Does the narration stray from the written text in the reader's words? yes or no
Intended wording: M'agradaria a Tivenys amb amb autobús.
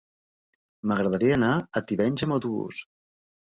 yes